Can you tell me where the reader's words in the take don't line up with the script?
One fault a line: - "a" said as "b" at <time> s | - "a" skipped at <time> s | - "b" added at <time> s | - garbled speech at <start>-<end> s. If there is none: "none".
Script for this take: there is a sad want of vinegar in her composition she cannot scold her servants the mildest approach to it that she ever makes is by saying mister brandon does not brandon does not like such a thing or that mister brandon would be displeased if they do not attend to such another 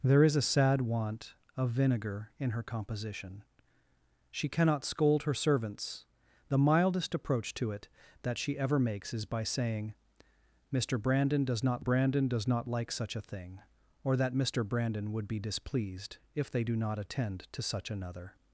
none